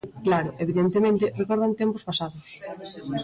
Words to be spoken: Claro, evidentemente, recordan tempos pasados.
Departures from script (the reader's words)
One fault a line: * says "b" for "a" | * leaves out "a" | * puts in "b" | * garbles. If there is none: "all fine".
all fine